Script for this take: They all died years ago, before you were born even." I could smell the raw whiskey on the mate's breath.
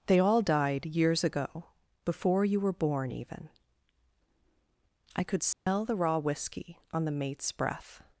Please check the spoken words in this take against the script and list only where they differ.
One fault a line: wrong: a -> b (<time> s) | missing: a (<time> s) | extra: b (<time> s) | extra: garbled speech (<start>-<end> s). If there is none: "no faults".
no faults